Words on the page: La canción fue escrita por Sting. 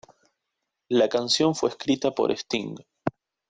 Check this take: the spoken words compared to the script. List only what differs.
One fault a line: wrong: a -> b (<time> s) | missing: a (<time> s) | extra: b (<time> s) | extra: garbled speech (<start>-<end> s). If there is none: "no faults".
no faults